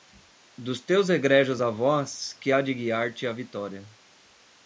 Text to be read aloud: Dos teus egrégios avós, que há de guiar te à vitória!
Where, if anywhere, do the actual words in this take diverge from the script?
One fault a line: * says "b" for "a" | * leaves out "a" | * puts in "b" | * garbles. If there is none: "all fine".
all fine